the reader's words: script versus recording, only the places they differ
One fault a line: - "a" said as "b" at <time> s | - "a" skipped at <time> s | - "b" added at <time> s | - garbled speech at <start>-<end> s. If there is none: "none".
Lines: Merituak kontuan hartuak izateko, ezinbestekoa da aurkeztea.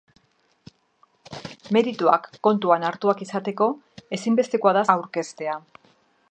none